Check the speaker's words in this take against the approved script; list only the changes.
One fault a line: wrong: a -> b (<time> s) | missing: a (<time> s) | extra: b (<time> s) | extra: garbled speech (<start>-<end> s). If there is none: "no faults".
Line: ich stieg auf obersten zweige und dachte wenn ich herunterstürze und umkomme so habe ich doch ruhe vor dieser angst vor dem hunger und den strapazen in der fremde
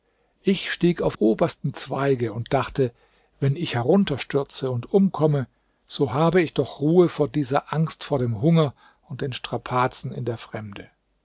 no faults